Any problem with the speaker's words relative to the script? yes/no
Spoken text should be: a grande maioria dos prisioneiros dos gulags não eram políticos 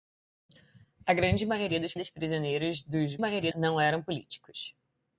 yes